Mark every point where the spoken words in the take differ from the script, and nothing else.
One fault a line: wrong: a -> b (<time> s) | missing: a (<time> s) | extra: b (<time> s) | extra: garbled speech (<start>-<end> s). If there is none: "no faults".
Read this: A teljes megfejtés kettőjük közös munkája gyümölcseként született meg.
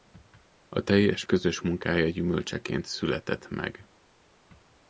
missing: megfejtés kettőjük (1.2 s)